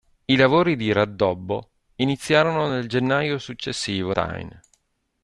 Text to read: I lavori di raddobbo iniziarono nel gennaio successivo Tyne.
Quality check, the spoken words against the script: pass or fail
pass